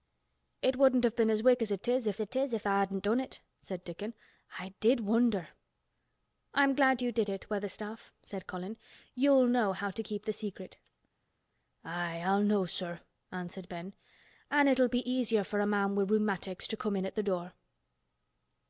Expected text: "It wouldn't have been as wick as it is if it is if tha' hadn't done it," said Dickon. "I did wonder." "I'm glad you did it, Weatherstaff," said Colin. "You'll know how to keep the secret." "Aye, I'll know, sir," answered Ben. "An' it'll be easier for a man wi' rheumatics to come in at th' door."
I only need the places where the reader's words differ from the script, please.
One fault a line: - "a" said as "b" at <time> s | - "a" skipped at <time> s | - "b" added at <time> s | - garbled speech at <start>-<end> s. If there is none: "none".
none